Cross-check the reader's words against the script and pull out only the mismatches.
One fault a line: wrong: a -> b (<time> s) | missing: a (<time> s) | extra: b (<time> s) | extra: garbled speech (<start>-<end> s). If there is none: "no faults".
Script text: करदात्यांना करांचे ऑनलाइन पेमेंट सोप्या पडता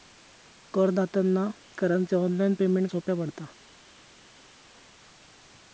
no faults